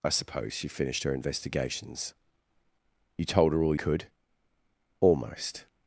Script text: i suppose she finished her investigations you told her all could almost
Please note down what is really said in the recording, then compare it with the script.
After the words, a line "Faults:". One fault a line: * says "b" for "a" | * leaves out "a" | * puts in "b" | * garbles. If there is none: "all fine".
i suppose she finished her investigations you told her all could almost
Faults:
all fine